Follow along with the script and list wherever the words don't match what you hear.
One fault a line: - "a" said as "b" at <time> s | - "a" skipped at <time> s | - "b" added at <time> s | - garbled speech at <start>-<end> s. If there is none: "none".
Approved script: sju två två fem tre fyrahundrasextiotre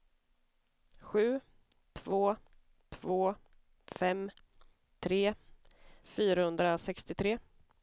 none